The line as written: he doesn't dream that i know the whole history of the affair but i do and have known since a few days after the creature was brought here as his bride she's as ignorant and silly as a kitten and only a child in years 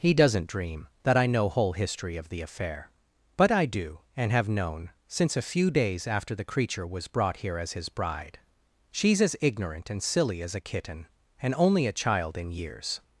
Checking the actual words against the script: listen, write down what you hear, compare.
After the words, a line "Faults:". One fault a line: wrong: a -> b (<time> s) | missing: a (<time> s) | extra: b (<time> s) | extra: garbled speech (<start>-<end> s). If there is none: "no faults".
he doesn't dream that i know whole history of the affair but i do and have known since a few days after the creature was brought here as his bride she's as ignorant and silly as a kitten and only a child in years
Faults:
missing: the (1.5 s)